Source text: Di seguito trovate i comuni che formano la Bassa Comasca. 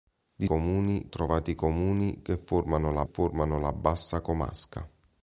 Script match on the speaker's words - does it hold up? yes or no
no